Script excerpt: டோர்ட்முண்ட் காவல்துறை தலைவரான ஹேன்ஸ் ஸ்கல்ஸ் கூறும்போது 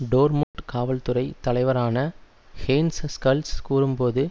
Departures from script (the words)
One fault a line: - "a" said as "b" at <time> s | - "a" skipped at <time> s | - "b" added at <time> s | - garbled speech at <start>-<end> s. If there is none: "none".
none